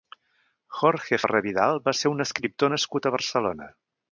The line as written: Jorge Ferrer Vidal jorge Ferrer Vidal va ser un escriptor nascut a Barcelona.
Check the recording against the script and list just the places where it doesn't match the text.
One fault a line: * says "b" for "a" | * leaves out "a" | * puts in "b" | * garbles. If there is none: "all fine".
* leaves out "jorge Ferrer Vidal"